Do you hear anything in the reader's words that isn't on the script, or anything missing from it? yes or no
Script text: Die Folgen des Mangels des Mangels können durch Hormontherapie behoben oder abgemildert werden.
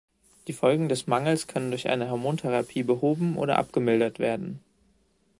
yes